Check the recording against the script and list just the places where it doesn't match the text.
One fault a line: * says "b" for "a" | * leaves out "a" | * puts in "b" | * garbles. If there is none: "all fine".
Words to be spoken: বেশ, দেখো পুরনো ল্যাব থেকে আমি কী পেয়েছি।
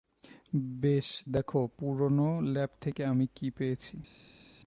all fine